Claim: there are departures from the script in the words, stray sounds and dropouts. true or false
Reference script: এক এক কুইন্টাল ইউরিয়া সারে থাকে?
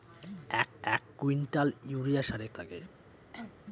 true